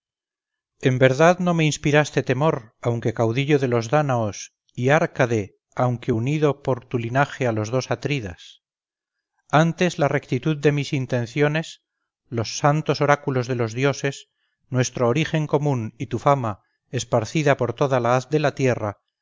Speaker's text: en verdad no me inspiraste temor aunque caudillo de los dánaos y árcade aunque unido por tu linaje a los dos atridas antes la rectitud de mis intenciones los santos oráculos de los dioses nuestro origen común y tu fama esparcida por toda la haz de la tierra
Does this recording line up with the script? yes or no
yes